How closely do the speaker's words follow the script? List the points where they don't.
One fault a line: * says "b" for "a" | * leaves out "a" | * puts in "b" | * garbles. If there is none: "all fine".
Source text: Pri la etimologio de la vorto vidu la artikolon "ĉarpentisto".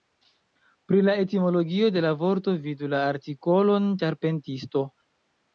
all fine